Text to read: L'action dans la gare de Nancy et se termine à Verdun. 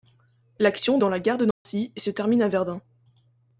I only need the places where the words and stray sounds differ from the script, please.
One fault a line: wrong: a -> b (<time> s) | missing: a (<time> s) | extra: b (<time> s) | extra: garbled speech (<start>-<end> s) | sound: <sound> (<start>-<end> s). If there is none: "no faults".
sound: dropout (1.5-1.7 s)